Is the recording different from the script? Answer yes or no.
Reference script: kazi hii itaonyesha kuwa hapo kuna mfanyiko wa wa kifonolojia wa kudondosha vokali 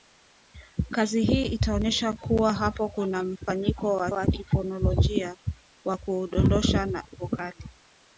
no